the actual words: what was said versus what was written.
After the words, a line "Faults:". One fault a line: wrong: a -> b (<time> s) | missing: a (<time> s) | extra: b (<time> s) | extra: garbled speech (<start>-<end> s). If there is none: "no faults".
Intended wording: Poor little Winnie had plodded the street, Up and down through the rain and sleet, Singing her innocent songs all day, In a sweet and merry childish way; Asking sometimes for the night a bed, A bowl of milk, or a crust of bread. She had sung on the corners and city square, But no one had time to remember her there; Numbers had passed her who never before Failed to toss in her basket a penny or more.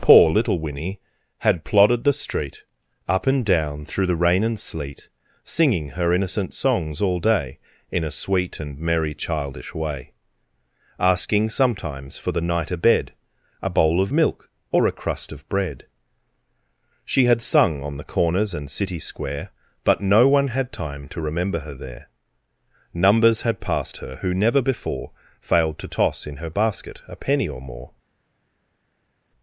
Poor little Winnie had plodded the street, Up and down through the rain and sleet, Singing her innocent songs all day, In a sweet and merry childish way; Asking sometimes for the night a bed, A bowl of milk, or a crust of bread. She had sung on the corners and city square, But no one had time to remember her there; Numbers had passed her who never before Failed to toss in her basket a penny or more.
Faults:
no faults